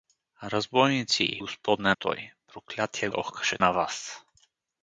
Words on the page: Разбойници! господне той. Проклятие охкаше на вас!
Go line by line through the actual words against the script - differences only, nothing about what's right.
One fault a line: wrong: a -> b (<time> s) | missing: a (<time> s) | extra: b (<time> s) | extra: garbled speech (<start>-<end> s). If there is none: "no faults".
no faults